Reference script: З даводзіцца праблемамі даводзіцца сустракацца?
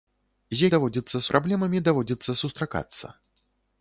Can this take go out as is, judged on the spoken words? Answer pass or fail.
pass